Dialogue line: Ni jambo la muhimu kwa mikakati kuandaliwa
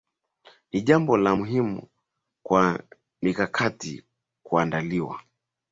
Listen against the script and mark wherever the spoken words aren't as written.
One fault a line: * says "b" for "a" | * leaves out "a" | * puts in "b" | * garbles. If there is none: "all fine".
all fine